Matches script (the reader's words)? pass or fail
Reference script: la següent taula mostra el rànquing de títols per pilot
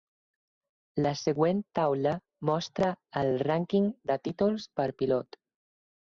pass